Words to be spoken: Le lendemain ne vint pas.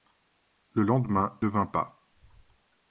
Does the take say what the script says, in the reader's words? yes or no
yes